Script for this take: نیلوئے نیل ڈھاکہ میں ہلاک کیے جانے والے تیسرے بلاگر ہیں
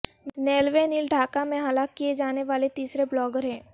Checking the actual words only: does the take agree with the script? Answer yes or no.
yes